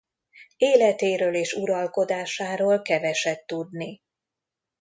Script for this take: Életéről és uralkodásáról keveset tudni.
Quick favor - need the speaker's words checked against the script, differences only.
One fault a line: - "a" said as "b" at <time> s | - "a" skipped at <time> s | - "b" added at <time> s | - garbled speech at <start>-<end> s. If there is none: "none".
none